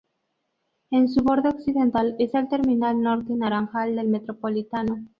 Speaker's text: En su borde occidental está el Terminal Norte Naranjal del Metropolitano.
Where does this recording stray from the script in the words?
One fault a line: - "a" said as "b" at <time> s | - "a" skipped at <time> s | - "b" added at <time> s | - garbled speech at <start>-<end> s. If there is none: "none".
none